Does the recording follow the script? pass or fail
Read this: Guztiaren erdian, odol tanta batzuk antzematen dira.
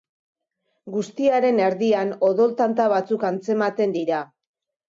pass